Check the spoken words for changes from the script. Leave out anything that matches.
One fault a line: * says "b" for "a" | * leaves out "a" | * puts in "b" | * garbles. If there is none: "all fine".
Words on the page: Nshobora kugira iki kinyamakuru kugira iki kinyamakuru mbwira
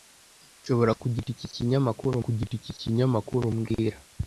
all fine